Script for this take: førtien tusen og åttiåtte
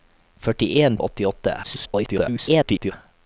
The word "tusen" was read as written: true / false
false